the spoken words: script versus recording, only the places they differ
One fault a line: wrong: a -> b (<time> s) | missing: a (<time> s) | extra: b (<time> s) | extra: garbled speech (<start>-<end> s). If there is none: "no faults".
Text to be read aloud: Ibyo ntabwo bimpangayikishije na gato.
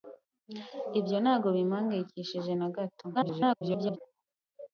extra: garbled speech (3.1-4.0 s)